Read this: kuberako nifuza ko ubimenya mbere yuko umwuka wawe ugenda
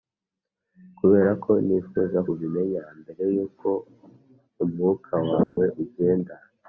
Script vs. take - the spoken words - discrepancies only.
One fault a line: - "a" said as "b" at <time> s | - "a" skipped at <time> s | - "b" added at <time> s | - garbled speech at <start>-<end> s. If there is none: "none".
- "ko" skipped at 2.2 s